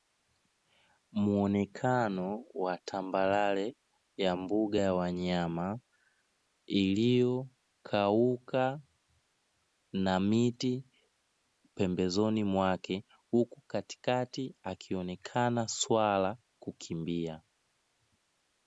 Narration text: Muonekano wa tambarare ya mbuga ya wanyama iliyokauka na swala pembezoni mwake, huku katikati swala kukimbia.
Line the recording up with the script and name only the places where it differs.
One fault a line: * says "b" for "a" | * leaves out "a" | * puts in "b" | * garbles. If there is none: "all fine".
* says "miti" for "swala"
* puts in "akionekana"